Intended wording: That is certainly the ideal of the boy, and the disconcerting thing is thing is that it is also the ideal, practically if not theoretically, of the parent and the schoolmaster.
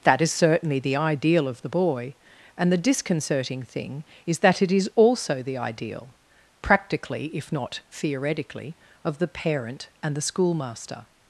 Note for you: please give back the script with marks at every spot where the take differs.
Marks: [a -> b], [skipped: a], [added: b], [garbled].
That is certainly the ideal of the boy, and the disconcerting thing is [skipped: thing is] that it is also the ideal, practically if not theoretically, of the parent and the schoolmaster.